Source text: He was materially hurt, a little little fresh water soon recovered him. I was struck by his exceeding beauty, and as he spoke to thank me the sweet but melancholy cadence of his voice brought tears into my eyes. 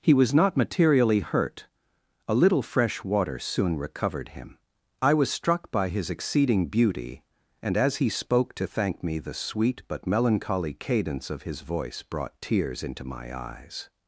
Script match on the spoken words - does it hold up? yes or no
no